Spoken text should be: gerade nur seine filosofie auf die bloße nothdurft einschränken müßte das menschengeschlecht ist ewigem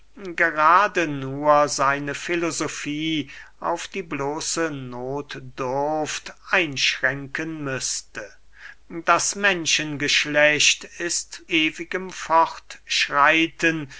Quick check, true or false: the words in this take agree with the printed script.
true